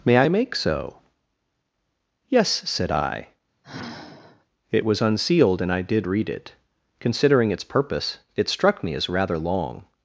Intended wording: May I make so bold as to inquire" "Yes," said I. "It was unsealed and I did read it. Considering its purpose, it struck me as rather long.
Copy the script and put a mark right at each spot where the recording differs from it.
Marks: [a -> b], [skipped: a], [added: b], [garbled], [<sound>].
May I make so [skipped: bold as to inquire"] "Yes," said I. [sigh] "It was unsealed and I did read it. Considering its purpose, it struck me as rather long.